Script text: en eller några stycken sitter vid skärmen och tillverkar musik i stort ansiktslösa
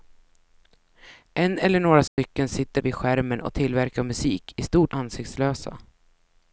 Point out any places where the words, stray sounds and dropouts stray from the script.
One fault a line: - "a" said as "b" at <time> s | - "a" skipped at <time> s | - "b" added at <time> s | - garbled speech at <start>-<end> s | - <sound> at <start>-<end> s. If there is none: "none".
- dropout at 2.1-2.2 s